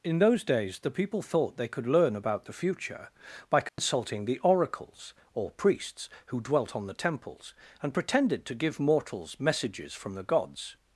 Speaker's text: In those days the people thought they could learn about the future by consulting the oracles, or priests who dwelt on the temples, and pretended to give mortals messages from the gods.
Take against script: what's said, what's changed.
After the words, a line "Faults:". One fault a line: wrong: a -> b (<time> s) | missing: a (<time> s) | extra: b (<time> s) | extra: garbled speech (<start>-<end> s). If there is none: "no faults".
In those days the people thought they could learn about the future by consulting the oracles, or priests who dwelt on the temples, and pretended to give mortals messages from the gods.
Faults:
no faults